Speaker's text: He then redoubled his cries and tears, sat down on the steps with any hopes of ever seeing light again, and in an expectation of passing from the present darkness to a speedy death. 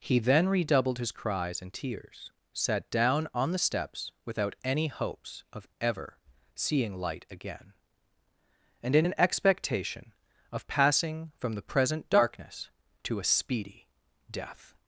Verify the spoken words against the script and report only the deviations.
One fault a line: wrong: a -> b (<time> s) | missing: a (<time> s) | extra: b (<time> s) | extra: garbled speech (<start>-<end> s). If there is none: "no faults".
wrong: with -> without (4.2 s)